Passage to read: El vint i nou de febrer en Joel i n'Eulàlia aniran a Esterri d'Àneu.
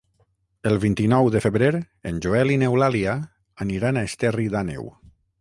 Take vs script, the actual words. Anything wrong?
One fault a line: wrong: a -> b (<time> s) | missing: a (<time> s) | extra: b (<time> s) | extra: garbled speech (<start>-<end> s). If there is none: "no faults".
no faults